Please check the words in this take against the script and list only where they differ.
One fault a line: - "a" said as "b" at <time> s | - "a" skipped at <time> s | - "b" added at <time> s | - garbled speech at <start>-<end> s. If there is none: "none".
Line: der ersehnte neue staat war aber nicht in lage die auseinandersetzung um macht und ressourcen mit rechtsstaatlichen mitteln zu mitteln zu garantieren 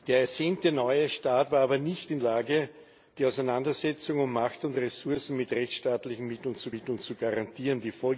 none